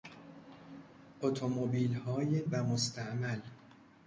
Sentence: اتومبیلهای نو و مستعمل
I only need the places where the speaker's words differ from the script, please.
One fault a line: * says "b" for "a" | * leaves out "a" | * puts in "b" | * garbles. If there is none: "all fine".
* leaves out "نو"